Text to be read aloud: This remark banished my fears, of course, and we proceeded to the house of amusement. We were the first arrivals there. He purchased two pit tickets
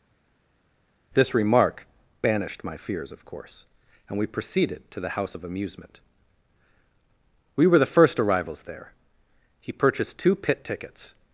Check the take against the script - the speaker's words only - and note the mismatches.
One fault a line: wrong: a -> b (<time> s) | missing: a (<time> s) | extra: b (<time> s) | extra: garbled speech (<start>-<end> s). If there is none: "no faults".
no faults